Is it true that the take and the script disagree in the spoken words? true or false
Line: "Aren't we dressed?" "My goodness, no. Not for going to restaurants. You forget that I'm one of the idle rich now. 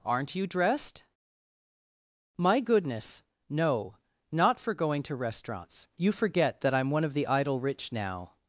true